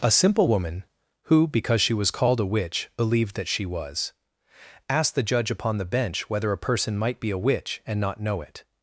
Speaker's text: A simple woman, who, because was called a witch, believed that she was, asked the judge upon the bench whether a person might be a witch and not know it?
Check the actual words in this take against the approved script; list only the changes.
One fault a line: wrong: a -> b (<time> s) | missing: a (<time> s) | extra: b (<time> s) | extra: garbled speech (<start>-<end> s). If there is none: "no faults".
extra: she (1.8 s)